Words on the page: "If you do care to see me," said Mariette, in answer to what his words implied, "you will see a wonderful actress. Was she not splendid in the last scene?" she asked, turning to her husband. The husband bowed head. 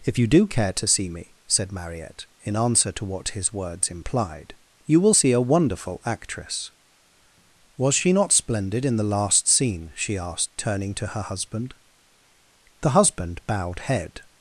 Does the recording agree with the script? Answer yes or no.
yes